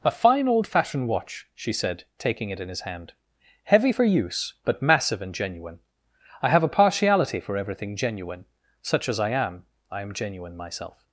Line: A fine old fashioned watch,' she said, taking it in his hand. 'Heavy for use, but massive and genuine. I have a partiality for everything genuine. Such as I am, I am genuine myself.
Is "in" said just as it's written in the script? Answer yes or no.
yes